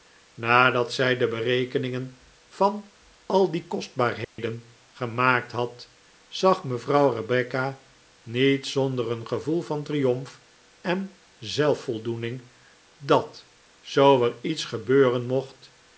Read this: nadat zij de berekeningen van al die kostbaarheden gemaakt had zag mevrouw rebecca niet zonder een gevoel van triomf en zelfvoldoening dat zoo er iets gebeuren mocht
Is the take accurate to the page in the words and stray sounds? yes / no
no